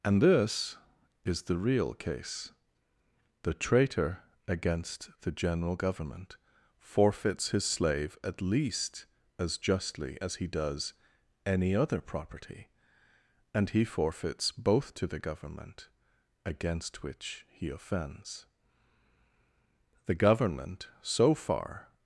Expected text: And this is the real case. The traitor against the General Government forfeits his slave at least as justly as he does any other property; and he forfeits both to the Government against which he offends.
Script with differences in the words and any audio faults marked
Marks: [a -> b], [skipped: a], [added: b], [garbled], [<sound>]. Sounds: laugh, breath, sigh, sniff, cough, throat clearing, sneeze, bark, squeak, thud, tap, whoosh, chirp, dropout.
And this is the real case. The traitor against the General Government forfeits his slave at least as justly as he does any other property; and he forfeits both to the Government against which he offends. [added: The Government so far]